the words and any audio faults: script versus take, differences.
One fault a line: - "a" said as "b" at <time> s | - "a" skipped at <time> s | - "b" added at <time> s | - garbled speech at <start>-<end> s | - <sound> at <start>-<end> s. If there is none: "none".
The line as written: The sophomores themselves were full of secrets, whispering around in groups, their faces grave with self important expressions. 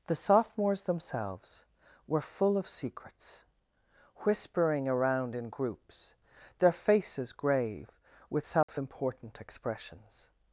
- dropout at 8.6-8.7 s